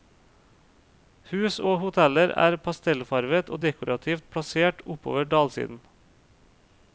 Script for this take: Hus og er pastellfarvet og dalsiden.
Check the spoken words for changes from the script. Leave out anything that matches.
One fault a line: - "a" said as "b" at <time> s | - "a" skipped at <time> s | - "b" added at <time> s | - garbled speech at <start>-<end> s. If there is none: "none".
- "hoteller" added at 1.8 s
- "dekorativt plassert oppover" added at 3.6 s